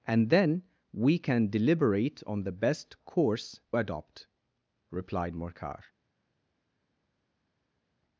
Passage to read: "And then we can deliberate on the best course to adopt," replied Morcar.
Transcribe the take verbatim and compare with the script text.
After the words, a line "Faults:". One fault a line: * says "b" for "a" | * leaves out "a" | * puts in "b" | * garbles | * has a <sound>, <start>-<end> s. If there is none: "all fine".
"And then we can deliberate on the best course adopt," replied Morcar.
Faults:
* leaves out "to"